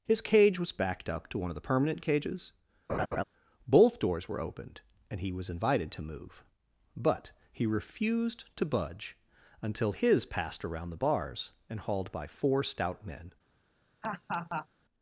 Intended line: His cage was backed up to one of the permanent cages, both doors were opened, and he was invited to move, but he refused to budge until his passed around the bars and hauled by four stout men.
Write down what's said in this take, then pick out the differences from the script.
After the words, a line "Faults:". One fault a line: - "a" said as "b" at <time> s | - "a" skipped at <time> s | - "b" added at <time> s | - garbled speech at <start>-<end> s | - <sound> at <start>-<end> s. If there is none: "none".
His cage was backed up to one of the permanent cages, both doors were opened, and he was invited to move, but he refused to budge until his passed around the bars and hauled by four stout men.
Faults:
- laugh at 2.9-3.2 s
- laugh at 14.0-14.7 s